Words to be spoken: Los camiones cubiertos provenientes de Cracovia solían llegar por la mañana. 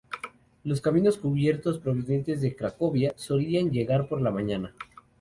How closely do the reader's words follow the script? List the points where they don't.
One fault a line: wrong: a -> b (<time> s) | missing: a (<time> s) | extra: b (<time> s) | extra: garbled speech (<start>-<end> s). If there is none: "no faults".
no faults